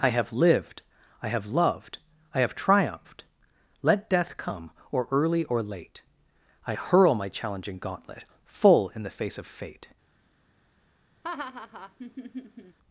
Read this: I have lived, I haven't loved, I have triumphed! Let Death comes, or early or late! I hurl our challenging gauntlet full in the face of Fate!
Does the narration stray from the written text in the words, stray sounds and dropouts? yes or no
yes